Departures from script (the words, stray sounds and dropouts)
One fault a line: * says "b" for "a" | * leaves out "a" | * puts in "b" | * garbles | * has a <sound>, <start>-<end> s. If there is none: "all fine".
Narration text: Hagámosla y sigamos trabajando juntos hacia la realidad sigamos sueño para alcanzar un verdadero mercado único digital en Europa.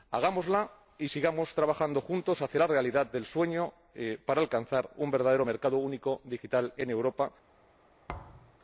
* says "del" for "sigamos"
* has a thud, 8.1-8.6 s